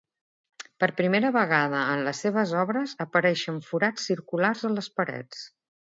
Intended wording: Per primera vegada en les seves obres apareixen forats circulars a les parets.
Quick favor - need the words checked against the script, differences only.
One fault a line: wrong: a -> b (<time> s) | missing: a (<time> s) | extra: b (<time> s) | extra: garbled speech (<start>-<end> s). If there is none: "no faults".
no faults